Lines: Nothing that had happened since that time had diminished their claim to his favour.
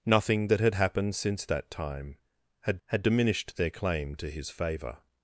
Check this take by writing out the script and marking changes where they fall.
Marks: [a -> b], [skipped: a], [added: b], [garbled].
Nothing that had happened since that time had [added: had] diminished their claim to his favour.